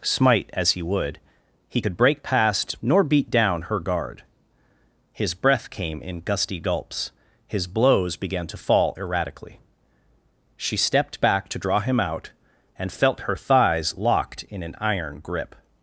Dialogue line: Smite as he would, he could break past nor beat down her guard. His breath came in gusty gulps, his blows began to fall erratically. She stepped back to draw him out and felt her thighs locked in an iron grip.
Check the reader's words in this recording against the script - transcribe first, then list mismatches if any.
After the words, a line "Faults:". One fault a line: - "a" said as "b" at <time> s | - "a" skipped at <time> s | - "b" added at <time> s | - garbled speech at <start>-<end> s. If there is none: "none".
Smite as he would, he could break past nor beat down her guard. His breath came in gusty gulps, his blows began to fall erratically. She stepped back to draw him out and felt her thighs locked in an iron grip.
Faults:
none